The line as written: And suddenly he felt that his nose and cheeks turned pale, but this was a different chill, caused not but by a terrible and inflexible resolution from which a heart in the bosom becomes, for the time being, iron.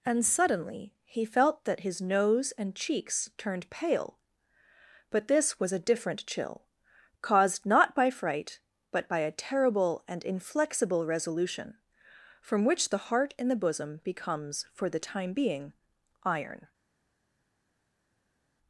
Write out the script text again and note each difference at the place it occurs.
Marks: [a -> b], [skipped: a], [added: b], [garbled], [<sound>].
And suddenly he felt that his nose and cheeks turned pale, but this was a different chill, caused not [added: by fright] but by a terrible and inflexible resolution from which [a -> the] heart in the bosom becomes, for the time being, iron.